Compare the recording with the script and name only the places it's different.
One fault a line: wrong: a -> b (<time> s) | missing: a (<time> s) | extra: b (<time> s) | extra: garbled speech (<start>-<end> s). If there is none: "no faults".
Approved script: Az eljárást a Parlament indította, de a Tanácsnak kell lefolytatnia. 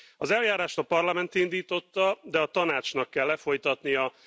no faults